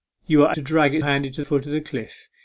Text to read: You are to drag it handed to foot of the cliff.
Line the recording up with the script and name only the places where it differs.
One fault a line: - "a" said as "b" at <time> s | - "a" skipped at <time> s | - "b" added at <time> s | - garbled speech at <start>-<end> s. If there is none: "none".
none